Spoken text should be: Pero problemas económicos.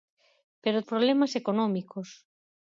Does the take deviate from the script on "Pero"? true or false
false